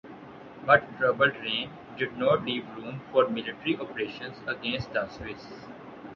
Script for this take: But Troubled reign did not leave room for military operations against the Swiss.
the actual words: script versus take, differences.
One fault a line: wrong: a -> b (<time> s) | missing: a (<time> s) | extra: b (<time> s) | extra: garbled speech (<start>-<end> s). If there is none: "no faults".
no faults